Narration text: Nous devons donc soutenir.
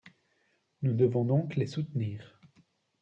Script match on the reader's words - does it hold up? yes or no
no